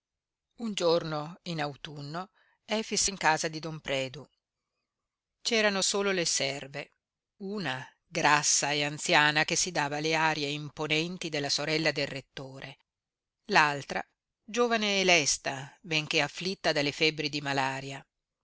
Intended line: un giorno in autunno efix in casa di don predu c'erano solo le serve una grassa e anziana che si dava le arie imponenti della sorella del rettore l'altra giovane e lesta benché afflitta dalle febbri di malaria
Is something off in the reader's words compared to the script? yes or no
no